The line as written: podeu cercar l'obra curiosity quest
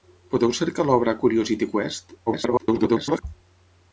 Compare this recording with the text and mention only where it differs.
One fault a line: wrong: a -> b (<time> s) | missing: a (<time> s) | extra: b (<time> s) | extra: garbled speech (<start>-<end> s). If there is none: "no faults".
extra: garbled speech (2.3-3.2 s)